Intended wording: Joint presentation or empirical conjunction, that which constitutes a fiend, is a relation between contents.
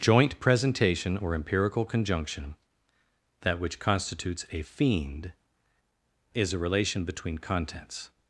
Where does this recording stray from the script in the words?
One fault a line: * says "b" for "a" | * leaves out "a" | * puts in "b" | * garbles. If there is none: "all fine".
all fine